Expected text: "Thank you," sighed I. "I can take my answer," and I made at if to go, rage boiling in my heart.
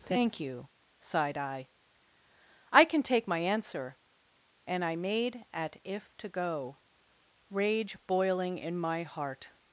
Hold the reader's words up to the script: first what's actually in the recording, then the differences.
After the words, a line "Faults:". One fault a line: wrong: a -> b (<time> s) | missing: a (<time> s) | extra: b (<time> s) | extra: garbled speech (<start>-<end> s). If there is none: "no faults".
"Thank you," sighed I. "I can take my answer," and I made at if to go, rage boiling in my heart.
Faults:
no faults